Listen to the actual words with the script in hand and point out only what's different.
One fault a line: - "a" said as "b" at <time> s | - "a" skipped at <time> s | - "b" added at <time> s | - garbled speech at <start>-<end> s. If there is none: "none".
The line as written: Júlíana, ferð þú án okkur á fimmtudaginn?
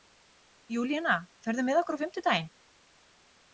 - "án" said as "með" at 1.7 s